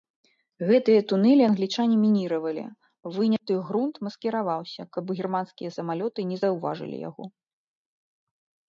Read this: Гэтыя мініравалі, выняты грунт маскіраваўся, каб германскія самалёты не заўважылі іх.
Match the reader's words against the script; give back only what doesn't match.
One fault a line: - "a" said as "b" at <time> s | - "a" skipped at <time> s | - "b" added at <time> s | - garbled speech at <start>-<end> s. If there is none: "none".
- "тунэлі англічане" added at 1.1 s
- "іх" said as "яго" at 7.1 s